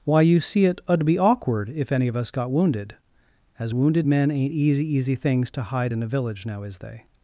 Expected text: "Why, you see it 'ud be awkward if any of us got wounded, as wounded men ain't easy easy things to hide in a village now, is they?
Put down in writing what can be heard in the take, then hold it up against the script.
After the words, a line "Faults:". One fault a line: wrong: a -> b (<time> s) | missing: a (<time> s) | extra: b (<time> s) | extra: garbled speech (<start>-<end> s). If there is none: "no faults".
"Why, you see it 'ud be awkward if any of us got wounded, as wounded men ain't easy easy things to hide in a village now, is they?
Faults:
no faults